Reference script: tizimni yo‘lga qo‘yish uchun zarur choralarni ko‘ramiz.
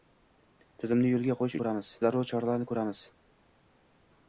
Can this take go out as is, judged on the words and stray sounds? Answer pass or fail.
fail